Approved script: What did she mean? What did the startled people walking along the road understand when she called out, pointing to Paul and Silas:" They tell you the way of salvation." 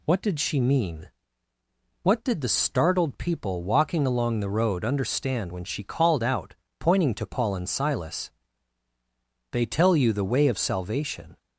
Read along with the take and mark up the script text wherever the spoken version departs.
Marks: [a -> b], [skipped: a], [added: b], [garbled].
What did she mean? What did the startled people walking along the road understand when she called out, pointing to Paul and Silas:" They tell you the way of salvation."